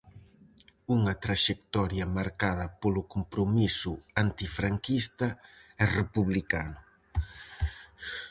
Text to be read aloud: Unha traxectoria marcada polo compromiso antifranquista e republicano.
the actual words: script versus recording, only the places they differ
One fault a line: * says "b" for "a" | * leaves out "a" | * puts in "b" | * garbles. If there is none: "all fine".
all fine